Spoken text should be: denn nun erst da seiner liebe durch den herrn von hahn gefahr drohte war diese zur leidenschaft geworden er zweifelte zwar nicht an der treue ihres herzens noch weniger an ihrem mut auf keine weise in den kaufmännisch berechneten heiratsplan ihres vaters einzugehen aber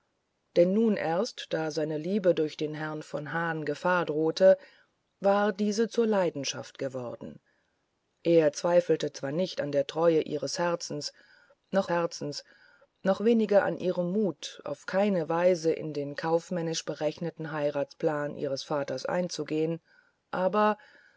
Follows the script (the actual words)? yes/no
no